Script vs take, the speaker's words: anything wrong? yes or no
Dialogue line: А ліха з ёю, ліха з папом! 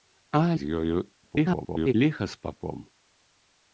yes